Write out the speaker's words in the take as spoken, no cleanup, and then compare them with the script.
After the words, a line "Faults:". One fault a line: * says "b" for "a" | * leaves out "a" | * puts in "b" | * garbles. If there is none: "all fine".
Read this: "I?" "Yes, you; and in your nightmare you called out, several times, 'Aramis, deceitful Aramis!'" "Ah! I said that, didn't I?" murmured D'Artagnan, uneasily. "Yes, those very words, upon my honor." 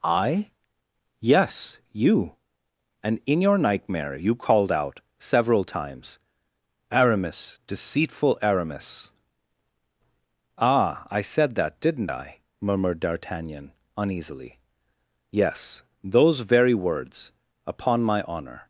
"I?" "Yes, you; and in your nightmare you called out, several times, 'Aramis, deceitful Aramis!'" "Ah! I said that, didn't I?" murmured D'Artagnan, uneasily. "Yes, those very words, upon my honor."
Faults:
all fine